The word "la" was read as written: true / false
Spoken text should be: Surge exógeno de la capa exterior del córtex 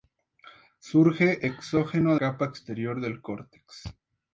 false